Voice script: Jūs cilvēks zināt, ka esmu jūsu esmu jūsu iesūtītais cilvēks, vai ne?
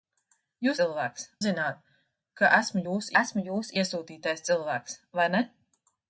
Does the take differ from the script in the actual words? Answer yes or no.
no